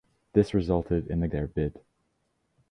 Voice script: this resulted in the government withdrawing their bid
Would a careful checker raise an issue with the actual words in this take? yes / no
yes